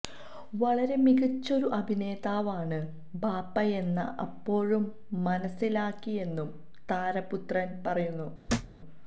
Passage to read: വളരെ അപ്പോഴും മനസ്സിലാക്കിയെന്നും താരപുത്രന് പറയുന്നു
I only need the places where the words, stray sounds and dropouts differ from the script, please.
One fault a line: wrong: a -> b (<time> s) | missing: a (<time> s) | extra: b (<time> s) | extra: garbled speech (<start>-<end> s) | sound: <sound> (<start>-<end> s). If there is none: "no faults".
extra: മികച്ചൊരു അഭിനേതാവാണ് ബാപ്പയെന്ന് (1.0 s)
sound: thud (8.5-8.8 s)